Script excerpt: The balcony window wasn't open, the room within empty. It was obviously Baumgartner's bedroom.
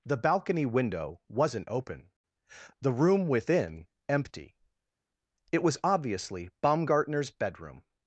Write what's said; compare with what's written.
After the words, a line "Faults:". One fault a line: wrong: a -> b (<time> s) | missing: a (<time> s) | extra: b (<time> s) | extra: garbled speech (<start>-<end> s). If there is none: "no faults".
The balcony window wasn't open, the room within empty. It was obviously Baumgartner's bedroom.
Faults:
no faults